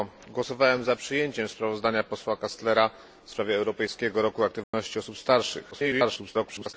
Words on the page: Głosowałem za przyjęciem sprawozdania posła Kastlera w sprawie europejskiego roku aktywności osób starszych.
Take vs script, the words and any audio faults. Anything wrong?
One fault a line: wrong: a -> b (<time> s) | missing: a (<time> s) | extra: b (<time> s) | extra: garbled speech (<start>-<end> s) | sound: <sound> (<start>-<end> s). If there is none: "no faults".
sound: dropout (4.6-4.7 s)
extra: garbled speech (5.7-6.7 s)